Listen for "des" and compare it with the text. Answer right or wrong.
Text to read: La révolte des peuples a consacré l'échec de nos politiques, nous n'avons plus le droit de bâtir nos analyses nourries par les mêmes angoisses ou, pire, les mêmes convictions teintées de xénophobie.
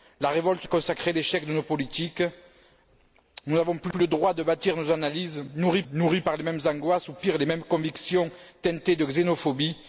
wrong